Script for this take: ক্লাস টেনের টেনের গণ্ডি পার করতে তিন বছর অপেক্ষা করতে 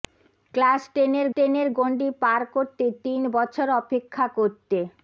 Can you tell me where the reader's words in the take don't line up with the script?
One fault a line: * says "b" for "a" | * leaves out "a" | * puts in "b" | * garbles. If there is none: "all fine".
all fine